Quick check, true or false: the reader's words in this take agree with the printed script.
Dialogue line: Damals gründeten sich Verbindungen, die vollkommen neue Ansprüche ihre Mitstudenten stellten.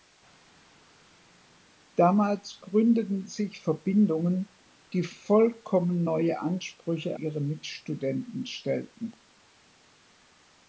true